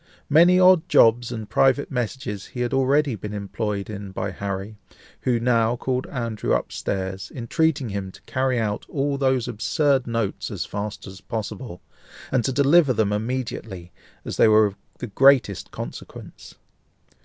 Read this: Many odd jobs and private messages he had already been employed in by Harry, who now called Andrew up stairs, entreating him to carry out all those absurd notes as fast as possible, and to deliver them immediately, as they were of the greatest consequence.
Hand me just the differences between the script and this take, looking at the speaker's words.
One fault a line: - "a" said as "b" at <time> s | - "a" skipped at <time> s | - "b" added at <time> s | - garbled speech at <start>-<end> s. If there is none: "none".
none